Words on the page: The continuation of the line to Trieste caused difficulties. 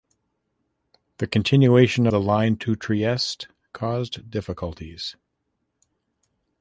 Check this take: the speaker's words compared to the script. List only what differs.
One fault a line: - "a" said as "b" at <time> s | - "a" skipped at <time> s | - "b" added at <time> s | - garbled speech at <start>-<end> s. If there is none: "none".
- "of" skipped at 2.1 s